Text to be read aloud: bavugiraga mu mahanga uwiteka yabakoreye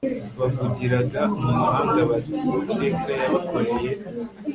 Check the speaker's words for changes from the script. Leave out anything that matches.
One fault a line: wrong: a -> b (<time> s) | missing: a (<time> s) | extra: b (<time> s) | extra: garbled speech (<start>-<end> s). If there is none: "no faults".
extra: bati (2.1 s)